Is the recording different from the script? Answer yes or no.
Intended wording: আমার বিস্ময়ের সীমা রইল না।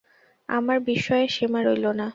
no